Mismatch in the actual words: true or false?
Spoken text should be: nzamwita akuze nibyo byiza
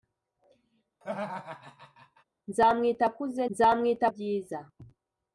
true